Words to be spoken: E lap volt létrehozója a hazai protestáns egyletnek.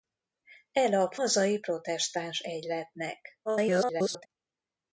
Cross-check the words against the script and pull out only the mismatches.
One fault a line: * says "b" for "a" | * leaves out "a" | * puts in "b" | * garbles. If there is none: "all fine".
* leaves out "volt létrehozója a"
* garbles